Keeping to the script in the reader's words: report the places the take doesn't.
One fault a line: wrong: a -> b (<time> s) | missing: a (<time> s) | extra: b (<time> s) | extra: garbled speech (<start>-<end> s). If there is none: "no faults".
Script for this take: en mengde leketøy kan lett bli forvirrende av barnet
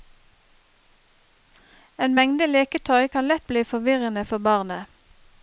wrong: av -> for (4.2 s)